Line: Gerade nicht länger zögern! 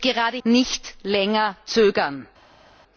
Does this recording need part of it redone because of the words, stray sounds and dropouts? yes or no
no